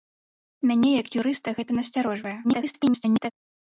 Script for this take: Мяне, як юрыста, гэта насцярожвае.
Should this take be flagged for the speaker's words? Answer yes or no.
yes